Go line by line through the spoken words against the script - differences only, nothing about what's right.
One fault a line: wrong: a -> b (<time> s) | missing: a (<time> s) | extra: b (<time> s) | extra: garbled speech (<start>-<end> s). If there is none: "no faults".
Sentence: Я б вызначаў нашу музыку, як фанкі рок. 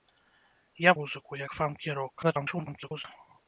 missing: б вызначаў нашу (0.9 s)
extra: garbled speech (2.2-3.0 s)